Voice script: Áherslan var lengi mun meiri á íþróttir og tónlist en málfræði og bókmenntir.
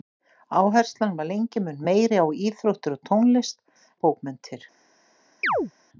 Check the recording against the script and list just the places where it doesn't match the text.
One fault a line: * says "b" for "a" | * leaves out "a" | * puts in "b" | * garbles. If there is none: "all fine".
* leaves out "en málfræði"